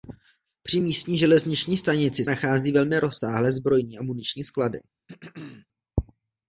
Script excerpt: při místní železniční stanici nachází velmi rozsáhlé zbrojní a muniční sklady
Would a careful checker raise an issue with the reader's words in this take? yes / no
no